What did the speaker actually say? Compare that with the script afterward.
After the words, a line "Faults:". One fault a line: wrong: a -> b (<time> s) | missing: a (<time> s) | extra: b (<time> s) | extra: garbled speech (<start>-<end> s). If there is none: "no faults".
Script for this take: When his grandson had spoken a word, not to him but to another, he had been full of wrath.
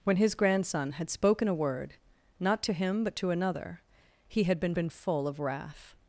When his grandson had spoken a word, not to him but to another, he had been been full of wrath.
Faults:
extra: been (4.7 s)